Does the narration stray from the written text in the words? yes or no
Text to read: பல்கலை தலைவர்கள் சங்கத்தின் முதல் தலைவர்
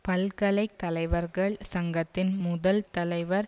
no